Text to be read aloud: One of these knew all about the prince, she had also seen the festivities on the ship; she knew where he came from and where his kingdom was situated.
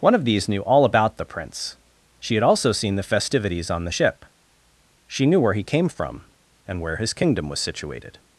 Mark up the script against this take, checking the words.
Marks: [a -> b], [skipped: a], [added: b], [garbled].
One of these knew all about the prince, she had also seen the festivities on the ship; she knew where he came from and where his kingdom was situated.